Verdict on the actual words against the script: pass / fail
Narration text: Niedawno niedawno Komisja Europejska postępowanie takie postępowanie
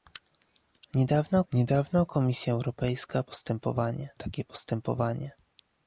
pass